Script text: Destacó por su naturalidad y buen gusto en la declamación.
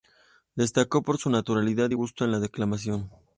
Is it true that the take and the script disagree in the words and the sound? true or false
true